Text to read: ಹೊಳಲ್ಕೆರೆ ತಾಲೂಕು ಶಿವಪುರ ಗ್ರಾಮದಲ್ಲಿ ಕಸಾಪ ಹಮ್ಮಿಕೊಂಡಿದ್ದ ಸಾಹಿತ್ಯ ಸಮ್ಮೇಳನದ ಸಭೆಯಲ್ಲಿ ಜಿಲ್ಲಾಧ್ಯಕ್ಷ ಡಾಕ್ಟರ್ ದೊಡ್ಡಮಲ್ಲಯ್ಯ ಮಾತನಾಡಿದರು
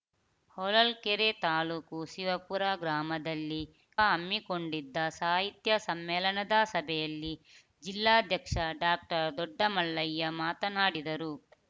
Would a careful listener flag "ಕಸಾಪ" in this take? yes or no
yes